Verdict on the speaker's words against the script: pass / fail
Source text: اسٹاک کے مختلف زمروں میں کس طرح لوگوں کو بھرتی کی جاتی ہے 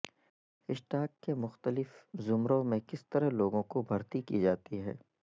pass